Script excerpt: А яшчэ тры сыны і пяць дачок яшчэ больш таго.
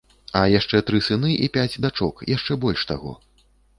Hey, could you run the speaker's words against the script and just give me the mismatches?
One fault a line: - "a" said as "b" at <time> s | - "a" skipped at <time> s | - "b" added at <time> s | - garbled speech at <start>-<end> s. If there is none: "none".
none